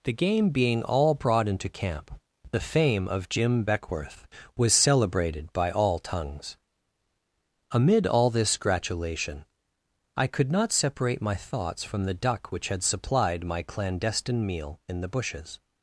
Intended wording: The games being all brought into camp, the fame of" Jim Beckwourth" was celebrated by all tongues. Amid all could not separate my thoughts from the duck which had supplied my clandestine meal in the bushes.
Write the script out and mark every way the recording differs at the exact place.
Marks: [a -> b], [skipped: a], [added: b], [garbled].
The [games -> game] being all brought into camp, the fame of" Jim Beckwourth" was celebrated by all tongues. Amid all [added: this gratulation I] could not separate my thoughts from the duck which had supplied my clandestine meal in the bushes.